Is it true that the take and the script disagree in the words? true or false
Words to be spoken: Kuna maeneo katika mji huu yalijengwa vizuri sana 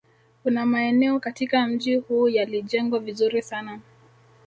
false